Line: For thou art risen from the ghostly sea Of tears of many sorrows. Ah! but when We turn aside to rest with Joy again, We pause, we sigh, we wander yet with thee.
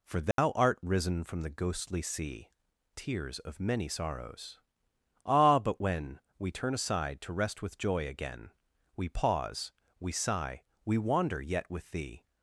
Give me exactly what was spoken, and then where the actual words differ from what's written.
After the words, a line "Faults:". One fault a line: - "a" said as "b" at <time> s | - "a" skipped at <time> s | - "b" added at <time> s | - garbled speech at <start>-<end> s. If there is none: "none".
For thou art risen from the ghostly sea Tears of many sorrows. Ah! but when We turn aside to rest with Joy again, We pause, we sigh, we wander yet with thee.
Faults:
- "Of" skipped at 2.5 s